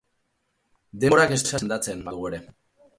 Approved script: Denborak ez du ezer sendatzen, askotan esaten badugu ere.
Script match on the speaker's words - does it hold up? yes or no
no